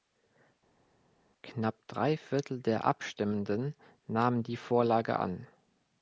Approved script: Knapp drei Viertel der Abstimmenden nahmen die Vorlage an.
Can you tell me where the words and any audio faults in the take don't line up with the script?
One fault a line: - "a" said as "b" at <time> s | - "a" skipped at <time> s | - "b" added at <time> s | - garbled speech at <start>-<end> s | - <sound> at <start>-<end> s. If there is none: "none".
none